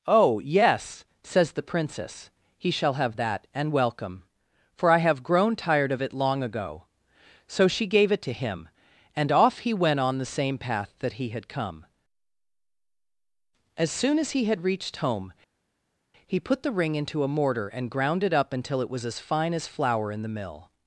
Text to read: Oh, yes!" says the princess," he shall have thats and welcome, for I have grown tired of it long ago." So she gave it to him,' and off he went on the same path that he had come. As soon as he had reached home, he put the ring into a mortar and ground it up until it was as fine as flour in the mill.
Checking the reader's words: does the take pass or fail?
fail